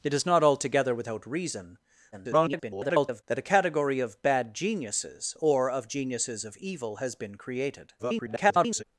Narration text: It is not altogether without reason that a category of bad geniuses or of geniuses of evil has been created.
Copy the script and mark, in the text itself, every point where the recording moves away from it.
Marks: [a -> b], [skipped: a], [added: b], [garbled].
It is not altogether without reason [garbled] that a category of bad geniuses or of geniuses of evil has been created. [garbled]